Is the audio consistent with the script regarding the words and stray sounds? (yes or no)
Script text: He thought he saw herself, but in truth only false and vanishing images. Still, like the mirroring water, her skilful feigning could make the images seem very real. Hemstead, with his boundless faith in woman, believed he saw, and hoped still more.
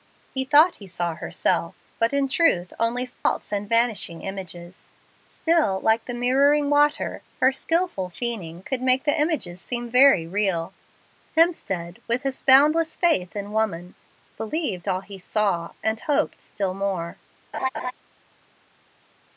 no